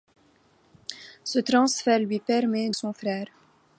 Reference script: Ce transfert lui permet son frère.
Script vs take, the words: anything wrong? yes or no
no